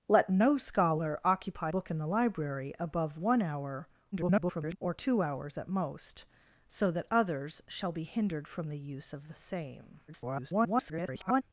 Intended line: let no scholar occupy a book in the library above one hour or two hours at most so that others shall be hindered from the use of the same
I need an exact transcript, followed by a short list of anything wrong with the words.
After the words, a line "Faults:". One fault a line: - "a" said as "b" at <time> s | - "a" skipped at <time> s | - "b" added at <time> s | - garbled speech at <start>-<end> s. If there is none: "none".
let no scholar occupy book in the library above one hour [garbled] or two hours at most so that others shall be hindered from the use of the same [garbled]
Faults:
- "a" skipped at 1.7 s
- garbled speech at 4.1-4.8 s
- garbled speech at 10.1-11.4 s